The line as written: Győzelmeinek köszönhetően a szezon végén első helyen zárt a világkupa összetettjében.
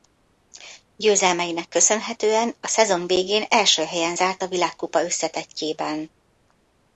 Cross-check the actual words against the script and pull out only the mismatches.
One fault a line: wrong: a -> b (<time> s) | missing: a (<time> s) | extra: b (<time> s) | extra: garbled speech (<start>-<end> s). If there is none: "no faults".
no faults